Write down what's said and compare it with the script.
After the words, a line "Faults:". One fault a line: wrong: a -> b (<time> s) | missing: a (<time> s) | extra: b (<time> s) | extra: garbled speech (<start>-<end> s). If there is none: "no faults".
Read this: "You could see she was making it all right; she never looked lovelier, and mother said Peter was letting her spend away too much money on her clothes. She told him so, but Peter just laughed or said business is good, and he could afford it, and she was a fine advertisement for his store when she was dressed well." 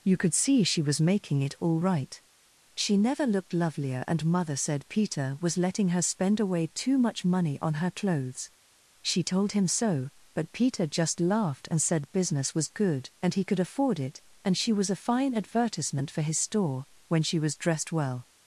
"You could see she was making it all right; she never looked lovelier, and mother said Peter was letting her spend away too much money on her clothes. She told him so, but Peter just laughed and said business was good, and he could afford it, and she was a fine advertisement for his store when she was dressed well."
Faults:
wrong: or -> and (11.7 s)
wrong: is -> was (12.5 s)